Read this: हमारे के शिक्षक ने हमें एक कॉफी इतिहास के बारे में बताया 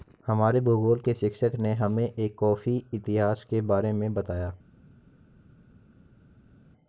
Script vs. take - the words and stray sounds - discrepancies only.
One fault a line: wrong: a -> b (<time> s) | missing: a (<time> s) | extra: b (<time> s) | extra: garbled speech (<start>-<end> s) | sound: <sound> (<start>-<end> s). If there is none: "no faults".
extra: भूगोल (0.6 s)